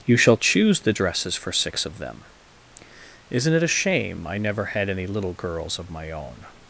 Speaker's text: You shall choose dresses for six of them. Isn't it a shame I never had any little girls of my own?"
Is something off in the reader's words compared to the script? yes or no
yes